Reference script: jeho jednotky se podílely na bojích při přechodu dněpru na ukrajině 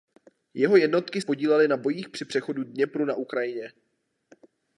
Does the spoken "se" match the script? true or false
false